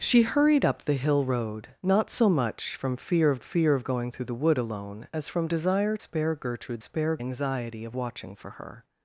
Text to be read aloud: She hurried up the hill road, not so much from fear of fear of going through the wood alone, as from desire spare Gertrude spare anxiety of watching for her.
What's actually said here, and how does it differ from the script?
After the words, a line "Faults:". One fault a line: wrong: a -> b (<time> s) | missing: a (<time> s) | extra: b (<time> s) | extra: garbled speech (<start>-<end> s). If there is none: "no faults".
She hurried up the hill road, not so much from fear of fear of going through the wood alone, as from desire spare Gertrude spare anxiety of watching for her.
Faults:
no faults